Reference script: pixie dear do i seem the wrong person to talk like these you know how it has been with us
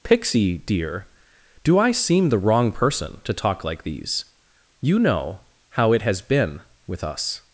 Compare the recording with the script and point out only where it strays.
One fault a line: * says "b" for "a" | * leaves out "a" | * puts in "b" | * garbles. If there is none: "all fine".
all fine